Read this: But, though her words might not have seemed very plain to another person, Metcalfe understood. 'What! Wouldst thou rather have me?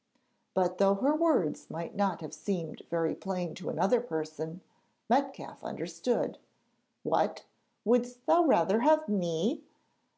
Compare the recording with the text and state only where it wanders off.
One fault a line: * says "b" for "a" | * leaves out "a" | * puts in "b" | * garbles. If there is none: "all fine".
all fine